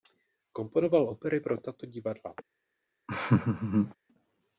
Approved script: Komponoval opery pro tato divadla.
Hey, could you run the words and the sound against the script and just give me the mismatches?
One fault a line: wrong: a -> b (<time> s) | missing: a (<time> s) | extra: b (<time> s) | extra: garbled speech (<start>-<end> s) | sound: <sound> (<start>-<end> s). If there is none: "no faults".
sound: laugh (3.1-3.9 s)